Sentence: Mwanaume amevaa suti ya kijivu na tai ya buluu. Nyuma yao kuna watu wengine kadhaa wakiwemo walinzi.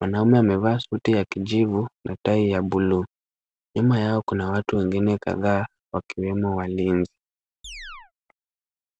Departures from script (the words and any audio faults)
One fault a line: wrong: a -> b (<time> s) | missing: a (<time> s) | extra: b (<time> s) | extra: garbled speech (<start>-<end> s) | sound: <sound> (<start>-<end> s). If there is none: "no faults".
sound: chirp (7.6-8.1 s)